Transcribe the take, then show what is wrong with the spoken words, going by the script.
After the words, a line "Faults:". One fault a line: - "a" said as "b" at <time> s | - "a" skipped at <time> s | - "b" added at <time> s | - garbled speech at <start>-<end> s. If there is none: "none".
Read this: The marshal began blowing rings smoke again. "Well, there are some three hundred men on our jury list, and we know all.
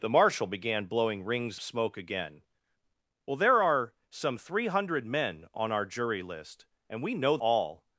The marshal began blowing rings smoke again. "Well, there are some three hundred men on our jury list, and we know all.
Faults:
none